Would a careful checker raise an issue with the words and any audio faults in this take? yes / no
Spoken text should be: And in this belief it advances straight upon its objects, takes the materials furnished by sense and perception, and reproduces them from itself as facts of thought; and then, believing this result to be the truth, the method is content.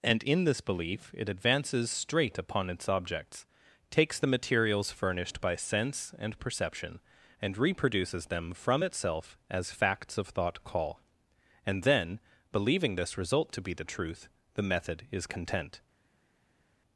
yes